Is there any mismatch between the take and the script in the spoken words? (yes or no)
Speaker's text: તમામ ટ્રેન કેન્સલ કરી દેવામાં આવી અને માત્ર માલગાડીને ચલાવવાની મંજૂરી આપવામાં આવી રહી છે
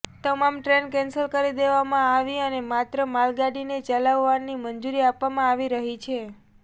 no